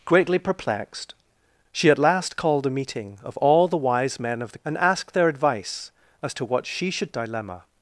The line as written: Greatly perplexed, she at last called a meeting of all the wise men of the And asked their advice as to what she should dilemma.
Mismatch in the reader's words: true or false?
false